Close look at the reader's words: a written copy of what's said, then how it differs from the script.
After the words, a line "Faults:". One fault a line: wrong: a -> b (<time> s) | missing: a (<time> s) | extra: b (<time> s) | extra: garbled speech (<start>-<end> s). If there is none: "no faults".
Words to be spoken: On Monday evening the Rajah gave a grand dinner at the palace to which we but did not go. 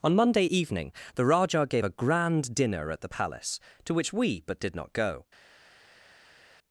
On Monday evening the Rajah gave a grand dinner at the palace to which we but did not go.
Faults:
no faults